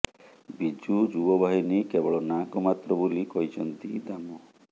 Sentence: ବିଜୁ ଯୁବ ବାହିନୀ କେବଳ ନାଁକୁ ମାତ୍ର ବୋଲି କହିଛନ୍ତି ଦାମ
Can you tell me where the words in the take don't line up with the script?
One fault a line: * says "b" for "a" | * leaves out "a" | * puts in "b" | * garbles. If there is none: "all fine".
all fine